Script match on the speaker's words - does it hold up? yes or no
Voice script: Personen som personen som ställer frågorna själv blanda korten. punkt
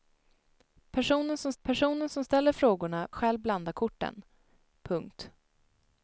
yes